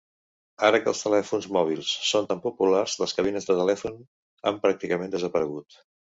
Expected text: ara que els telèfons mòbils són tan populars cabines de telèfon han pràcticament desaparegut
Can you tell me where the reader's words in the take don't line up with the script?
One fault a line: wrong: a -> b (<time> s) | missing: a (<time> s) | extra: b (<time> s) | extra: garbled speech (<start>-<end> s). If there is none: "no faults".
extra: les (3.0 s)